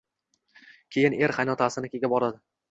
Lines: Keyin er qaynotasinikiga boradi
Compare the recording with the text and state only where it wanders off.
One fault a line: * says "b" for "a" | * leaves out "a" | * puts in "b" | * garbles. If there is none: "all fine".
all fine